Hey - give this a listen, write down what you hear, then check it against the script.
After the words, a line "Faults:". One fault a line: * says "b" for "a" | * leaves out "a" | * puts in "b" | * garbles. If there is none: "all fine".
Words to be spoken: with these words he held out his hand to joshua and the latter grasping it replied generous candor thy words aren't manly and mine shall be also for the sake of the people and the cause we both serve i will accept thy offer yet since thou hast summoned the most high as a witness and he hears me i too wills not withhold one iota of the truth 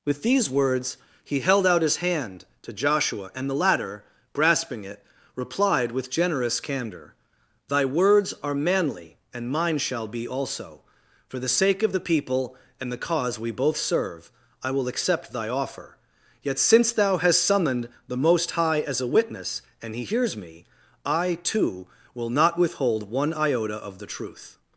with these words he held out his hand to joshua and the latter grasping it replied with generous candor thy words are manly and mine shall be also for the sake of the people and the cause we both serve i will accept thy offer yet since thou hast summoned the most high as a witness and he hears me i too will not withhold one iota of the truth
Faults:
* puts in "with"
* says "are" for "aren't"
* says "will" for "wills"